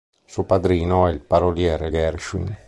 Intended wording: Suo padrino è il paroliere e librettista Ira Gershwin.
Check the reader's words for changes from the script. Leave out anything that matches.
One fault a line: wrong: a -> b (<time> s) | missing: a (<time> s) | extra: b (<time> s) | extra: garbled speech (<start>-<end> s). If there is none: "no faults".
missing: librettista Ira (1.9 s)